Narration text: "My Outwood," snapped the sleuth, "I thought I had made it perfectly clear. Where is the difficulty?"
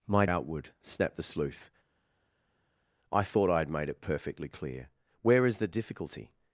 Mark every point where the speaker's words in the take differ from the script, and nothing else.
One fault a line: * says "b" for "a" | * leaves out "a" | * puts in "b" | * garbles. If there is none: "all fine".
all fine